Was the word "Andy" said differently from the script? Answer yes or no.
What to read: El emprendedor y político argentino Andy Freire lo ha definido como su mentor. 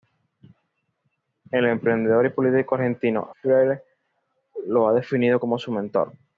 yes